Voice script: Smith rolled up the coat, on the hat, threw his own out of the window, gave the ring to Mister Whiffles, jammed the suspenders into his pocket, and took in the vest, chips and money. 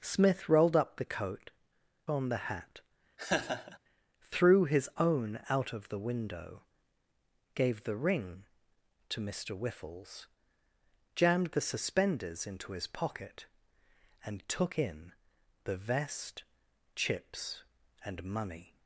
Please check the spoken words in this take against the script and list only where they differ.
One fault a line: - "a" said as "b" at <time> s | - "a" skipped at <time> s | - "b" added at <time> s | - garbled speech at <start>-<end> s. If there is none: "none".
none